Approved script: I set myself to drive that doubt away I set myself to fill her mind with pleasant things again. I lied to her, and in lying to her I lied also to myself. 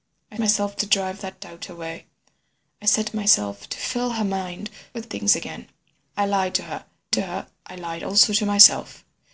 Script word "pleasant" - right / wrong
wrong